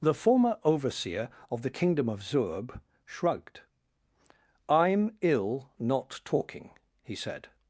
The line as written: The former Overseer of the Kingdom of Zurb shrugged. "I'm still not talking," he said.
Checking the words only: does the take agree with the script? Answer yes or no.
no